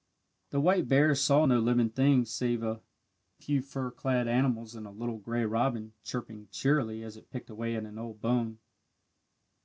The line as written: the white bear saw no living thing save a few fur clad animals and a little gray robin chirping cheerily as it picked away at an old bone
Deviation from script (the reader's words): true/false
false